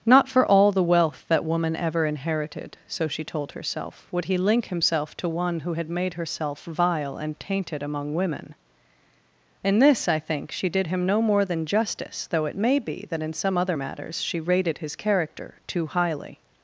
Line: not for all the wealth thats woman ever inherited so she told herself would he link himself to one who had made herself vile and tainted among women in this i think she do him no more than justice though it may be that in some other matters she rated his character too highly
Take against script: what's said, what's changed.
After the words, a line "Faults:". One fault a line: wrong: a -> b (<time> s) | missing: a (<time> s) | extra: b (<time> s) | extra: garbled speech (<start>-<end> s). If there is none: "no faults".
not for all the wealth that woman ever inherited so she told herself would he link himself to one who had made herself vile and tainted among women in this i think she did him no more than justice though it may be that in some other matters she rated his character too highly
Faults:
wrong: thats -> that (1.3 s)
wrong: do -> did (10.7 s)